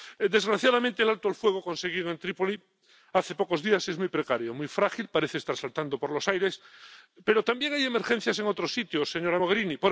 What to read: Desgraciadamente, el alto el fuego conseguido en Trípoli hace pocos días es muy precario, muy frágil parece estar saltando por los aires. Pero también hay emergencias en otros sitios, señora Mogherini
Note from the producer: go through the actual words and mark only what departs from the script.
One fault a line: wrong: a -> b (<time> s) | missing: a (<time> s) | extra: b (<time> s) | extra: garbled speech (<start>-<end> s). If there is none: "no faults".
no faults